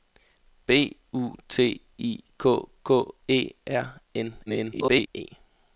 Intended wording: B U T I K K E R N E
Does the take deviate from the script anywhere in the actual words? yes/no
yes